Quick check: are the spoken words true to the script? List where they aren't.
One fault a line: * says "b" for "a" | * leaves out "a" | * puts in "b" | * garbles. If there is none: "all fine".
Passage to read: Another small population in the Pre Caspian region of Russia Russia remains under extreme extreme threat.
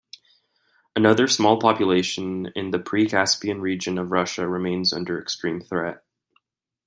* leaves out "Russia"
* leaves out "extreme"